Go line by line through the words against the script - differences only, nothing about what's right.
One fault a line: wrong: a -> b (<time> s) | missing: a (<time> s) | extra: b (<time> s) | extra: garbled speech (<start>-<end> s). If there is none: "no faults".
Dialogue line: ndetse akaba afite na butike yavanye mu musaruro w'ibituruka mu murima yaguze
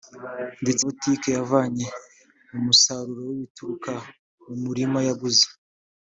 missing: akaba afite na (0.8 s)